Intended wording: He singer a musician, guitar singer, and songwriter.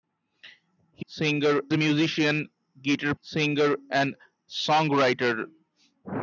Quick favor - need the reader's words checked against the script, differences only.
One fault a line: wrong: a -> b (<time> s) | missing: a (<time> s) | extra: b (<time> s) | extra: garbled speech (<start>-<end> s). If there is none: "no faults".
no faults